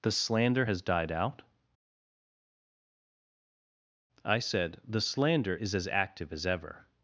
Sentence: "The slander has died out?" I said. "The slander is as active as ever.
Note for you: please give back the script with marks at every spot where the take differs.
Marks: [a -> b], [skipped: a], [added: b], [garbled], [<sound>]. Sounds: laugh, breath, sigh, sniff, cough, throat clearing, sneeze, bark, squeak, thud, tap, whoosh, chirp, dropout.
"The slander has died out?" I said. "The slander is as active as ever.